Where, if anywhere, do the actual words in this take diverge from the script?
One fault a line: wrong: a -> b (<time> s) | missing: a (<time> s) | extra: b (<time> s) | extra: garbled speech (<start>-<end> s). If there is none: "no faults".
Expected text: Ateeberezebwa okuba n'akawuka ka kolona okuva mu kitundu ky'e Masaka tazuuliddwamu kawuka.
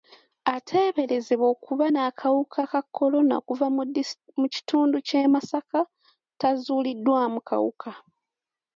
no faults